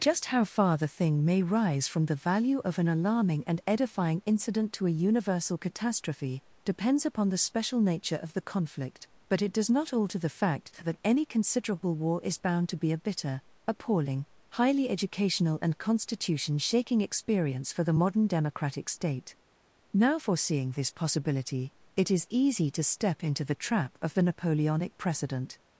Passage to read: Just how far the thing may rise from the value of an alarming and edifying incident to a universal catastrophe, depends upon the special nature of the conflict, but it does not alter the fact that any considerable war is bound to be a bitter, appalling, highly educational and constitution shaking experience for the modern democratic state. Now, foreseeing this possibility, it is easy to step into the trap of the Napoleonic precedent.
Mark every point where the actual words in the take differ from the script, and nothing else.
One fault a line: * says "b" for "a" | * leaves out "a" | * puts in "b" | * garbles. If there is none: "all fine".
all fine